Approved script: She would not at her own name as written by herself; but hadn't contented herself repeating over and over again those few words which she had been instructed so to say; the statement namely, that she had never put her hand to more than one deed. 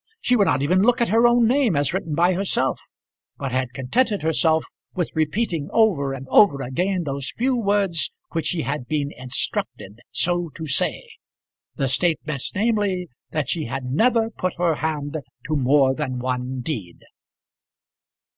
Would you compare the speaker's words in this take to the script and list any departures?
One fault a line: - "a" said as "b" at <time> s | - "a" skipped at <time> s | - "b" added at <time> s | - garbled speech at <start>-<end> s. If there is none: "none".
- "even look" added at 0.6 s
- "hadn't" said as "had" at 3.5 s
- "with" added at 4.9 s